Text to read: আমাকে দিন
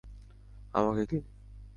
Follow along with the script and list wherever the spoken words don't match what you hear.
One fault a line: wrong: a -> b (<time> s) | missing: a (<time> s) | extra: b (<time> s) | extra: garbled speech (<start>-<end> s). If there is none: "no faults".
no faults